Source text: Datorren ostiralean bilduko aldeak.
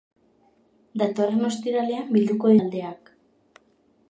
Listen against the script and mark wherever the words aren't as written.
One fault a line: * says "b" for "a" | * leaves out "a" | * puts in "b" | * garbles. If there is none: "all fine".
all fine